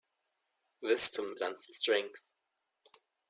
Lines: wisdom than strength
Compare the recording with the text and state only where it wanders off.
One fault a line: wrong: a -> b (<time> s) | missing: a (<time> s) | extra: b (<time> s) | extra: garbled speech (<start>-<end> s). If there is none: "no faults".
no faults